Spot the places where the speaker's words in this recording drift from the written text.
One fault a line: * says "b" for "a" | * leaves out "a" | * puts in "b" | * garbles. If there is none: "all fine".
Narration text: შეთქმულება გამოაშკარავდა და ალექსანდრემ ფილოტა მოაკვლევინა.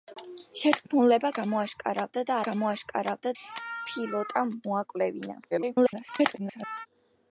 * says "გამოაშკარავდა" for "ალექსანდრემ"
* garbles